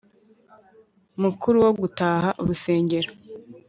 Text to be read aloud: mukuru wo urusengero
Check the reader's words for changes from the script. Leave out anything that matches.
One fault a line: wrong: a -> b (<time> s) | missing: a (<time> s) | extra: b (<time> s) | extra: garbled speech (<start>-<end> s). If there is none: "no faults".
extra: gutaha (1.8 s)